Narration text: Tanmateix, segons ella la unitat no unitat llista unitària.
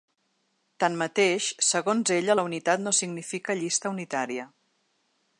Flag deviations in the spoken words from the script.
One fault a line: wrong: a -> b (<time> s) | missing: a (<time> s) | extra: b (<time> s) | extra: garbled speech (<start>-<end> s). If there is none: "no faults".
wrong: unitat -> significa (3.0 s)